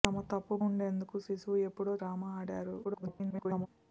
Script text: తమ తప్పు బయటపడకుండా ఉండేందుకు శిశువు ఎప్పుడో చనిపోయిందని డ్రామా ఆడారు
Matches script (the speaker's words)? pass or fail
fail